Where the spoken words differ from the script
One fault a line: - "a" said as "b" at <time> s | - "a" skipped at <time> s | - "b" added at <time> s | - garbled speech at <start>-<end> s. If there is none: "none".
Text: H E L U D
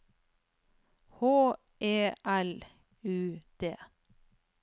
none